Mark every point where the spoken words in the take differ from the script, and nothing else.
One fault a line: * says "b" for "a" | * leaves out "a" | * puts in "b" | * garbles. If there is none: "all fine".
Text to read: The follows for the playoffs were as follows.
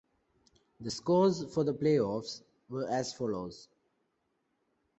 * says "scores" for "follows"